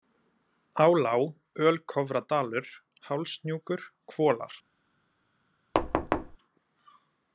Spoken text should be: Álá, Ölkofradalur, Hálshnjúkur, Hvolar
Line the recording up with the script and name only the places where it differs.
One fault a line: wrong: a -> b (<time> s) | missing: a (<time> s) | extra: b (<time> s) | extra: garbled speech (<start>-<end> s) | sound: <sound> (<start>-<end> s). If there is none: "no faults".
sound: thud (5.7-6.4 s)